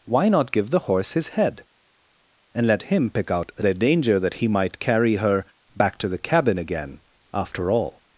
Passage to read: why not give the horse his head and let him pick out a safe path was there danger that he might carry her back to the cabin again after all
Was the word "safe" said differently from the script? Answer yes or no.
yes